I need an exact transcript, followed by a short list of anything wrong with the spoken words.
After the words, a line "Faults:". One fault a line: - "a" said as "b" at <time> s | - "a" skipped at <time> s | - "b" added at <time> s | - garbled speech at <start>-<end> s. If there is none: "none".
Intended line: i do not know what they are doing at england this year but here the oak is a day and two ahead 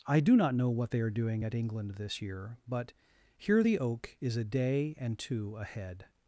i do not know what they are doing at england this year but here the oak is a day and two ahead
Faults:
none